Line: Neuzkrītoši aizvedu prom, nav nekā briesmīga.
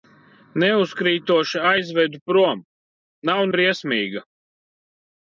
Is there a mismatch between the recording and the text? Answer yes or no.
yes